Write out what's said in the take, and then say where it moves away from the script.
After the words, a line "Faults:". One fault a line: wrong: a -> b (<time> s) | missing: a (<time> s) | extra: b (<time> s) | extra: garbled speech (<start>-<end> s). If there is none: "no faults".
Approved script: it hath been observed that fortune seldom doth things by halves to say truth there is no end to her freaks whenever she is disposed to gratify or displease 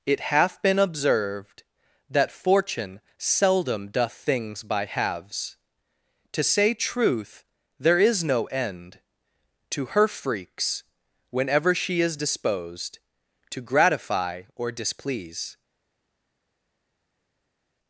it hath been observed that fortune seldom doth things by halves to say truth there is no end to her freaks whenever she is disposed to gratify or displease
Faults:
no faults